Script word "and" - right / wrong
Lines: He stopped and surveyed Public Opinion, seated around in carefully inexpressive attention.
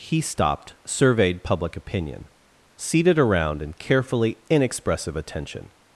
wrong